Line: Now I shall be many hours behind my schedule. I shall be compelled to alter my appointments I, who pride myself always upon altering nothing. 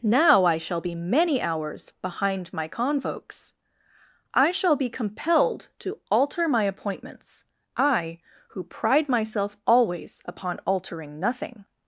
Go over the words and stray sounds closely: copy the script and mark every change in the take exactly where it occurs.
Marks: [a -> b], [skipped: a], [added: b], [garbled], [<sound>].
Now I shall be many hours behind my [schedule. -> convokes] I shall be compelled to alter my appointments I, who pride myself always upon altering nothing.